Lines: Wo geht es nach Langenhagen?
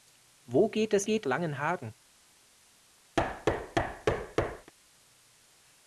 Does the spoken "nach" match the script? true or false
false